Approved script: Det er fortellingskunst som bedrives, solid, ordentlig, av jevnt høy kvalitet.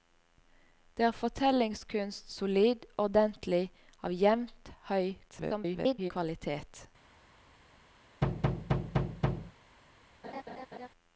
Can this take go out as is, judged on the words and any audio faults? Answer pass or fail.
fail